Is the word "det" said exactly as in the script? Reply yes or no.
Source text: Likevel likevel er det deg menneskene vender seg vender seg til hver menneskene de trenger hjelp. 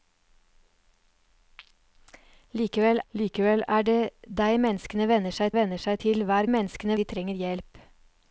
yes